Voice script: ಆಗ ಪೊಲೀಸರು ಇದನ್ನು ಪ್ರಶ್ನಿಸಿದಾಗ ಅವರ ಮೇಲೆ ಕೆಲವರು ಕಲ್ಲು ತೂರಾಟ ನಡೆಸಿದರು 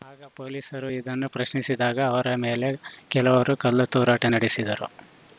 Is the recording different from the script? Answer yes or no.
no